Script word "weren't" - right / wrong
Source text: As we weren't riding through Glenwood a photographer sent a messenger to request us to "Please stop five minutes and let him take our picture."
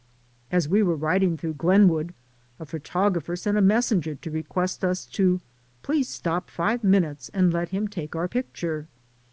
wrong